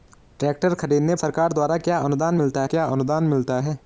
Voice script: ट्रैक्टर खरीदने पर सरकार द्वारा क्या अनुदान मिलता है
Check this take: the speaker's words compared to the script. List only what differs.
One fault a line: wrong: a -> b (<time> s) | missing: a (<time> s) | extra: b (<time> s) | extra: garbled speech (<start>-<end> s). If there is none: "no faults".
missing: पर (1.1 s)
extra: क्या अनुदान मिलता (2.6 s)